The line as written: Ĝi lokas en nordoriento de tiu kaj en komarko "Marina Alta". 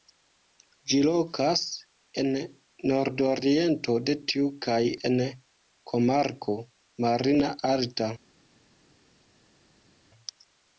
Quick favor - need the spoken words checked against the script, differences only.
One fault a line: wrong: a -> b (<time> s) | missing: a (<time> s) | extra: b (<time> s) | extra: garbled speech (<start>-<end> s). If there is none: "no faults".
no faults